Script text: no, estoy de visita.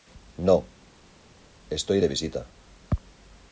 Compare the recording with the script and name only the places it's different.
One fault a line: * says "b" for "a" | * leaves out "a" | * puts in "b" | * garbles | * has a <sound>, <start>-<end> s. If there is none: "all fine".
all fine